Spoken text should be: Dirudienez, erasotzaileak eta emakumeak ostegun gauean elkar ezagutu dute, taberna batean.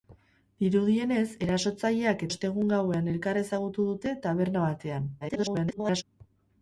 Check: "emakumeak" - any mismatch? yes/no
yes